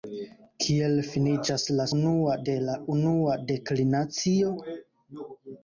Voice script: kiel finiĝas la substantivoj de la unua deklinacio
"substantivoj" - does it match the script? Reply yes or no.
no